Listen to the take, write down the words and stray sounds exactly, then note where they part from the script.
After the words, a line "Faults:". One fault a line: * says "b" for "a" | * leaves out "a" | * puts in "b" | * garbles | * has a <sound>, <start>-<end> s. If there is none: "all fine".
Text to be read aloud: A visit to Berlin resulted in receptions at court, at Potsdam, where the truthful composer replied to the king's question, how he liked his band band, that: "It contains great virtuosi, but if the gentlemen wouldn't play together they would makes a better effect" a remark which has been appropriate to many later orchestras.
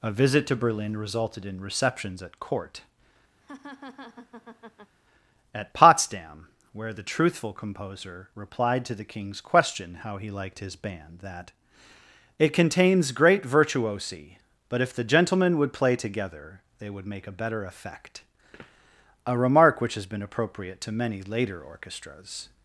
A visit to Berlin resulted in receptions at court, at Potsdam, where the truthful composer replied to the king's question, how he liked his band, that: "It contains great virtuosi, but if the gentlemen would play together they would make a better effect" a remark which has been appropriate to many later orchestras.
Faults:
* has a laugh, 3.4-5.0 s
* leaves out "band"
* says "would" for "wouldn't"
* says "make" for "makes"